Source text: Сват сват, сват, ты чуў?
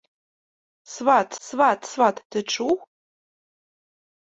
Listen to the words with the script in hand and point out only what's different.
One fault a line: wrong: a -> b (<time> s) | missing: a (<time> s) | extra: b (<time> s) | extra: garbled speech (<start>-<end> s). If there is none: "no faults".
no faults